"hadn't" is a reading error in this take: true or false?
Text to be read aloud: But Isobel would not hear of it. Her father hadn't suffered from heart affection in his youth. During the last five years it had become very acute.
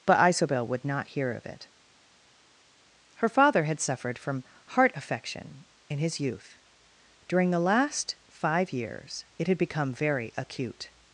true